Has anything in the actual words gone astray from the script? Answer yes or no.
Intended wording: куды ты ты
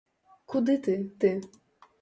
no